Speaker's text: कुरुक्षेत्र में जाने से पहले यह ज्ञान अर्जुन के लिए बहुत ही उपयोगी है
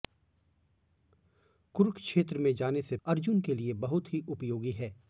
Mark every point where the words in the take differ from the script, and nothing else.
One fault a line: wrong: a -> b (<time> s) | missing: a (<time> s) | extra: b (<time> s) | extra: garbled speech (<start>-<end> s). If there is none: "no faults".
missing: पहले यह ज्ञान (3.0 s)